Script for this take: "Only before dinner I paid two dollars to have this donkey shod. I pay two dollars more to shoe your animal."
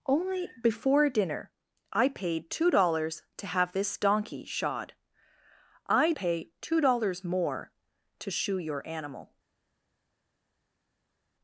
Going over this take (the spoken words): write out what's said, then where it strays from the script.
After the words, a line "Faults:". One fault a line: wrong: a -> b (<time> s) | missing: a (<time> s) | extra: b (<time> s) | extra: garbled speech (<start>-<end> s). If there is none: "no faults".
"Only before dinner I paid two dollars to have this donkey shod. I pay two dollars more to shoe your animal."
Faults:
no faults